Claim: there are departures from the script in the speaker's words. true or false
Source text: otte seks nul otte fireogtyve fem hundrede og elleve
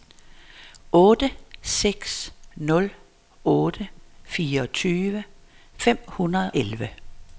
true